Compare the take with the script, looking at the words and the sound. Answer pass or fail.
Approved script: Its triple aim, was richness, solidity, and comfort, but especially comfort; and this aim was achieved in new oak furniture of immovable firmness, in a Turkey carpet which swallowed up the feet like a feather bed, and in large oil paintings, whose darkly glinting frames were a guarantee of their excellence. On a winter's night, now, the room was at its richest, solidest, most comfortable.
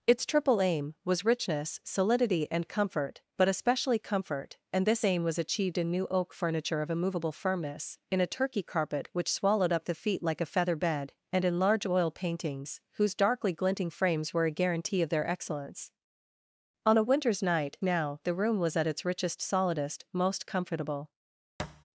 fail